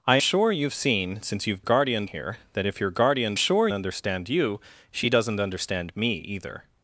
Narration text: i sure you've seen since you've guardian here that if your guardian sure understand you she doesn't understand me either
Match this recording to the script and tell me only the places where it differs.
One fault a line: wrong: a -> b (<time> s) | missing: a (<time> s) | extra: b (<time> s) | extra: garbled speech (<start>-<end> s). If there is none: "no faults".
no faults